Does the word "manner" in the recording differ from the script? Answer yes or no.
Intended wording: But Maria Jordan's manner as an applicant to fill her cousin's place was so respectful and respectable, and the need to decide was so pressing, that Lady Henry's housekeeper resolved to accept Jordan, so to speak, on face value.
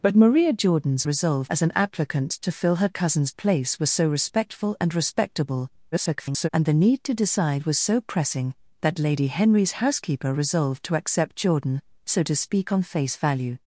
yes